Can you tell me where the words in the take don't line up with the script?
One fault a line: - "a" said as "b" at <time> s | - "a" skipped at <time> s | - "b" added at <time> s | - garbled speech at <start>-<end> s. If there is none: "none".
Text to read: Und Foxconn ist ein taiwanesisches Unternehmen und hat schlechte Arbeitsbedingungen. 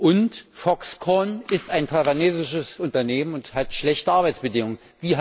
none